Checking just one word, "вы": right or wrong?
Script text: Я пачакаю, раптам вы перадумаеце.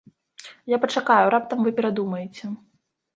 right